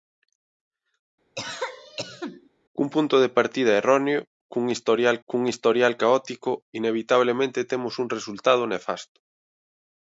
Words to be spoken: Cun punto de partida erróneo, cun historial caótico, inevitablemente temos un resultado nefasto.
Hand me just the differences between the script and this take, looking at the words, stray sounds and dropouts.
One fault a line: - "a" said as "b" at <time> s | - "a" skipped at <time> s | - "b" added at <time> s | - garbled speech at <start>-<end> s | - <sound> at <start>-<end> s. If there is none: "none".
- cough at 1.3-2.5 s
- "cun historial" added at 5.3 s